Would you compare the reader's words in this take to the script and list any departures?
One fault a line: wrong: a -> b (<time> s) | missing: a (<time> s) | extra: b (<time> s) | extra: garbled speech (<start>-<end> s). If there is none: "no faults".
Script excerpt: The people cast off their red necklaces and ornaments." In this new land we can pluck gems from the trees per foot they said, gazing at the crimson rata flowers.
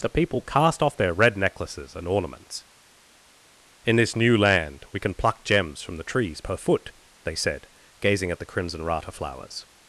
no faults